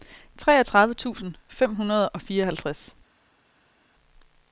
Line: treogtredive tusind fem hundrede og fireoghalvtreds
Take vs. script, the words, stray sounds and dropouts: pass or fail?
pass